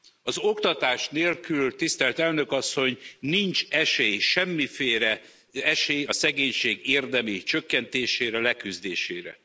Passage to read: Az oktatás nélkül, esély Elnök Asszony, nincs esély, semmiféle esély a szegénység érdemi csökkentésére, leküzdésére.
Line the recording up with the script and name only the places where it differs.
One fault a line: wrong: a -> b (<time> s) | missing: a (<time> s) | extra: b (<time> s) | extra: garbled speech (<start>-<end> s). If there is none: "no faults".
wrong: esély -> tisztelt (1.8 s)